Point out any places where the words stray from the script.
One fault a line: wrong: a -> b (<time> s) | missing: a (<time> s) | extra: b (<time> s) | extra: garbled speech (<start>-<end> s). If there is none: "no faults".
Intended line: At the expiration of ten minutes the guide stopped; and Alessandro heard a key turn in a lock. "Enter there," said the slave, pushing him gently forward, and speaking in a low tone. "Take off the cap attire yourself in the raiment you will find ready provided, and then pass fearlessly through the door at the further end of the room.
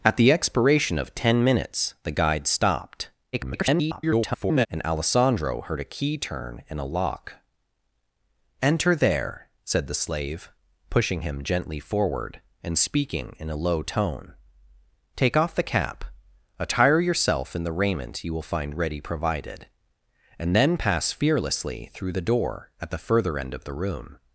extra: garbled speech (3.3-4.7 s)